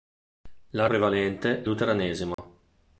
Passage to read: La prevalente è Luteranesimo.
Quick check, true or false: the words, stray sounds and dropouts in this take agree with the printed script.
false